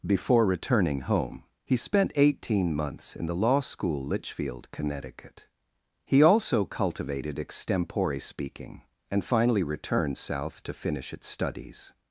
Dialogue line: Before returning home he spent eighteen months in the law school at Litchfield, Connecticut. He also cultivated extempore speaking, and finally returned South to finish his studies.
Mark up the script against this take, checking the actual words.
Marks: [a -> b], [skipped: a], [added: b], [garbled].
Before returning home he spent eighteen months in the law school [skipped: at] Litchfield, Connecticut. He also cultivated extempore speaking, and finally returned South to finish [his -> its] studies.